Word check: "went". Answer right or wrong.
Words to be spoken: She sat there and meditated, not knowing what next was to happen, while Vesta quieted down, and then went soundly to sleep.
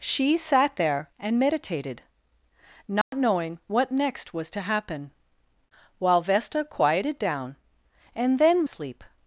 wrong